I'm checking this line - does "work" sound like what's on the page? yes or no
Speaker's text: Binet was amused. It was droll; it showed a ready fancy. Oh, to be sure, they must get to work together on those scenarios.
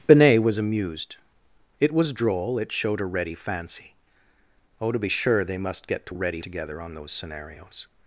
no